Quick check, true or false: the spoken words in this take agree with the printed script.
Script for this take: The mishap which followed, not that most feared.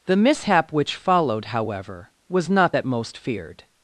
false